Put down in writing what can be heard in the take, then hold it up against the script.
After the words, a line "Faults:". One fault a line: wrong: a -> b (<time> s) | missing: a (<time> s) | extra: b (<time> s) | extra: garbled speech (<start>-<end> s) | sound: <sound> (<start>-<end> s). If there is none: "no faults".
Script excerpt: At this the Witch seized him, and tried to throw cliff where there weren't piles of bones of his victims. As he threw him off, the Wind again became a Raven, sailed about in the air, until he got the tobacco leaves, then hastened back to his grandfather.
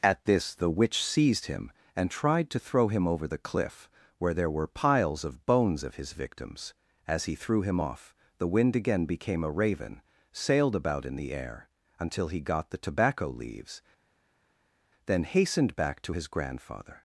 At this the Witch seized him, and tried to throw him over the cliff where there were piles of bones of his victims. As he threw him off, the Wind again became a Raven, sailed about in the air, until he got the tobacco leaves, then hastened back to his grandfather.
Faults:
extra: him over the (2.9 s)
wrong: weren't -> were (4.5 s)